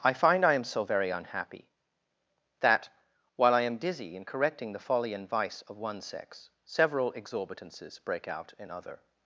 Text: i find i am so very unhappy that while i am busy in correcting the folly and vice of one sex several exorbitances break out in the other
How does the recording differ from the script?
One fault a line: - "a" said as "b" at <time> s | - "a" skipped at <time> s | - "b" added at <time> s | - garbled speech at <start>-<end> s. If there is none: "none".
- "busy" said as "dizzy" at 3.8 s
- "the" skipped at 8.7 s